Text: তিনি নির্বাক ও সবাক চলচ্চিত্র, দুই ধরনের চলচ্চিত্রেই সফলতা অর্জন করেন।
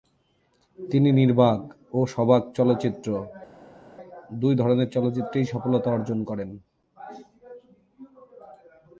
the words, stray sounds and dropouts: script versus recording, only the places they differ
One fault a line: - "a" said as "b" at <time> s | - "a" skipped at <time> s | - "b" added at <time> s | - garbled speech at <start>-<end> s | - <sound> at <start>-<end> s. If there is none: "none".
none